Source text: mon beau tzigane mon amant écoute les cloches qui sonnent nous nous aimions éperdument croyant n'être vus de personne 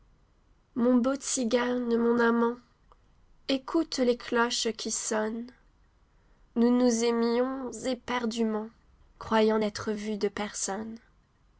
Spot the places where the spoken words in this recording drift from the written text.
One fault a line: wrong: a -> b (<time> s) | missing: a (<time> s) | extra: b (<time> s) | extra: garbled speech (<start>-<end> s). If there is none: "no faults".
no faults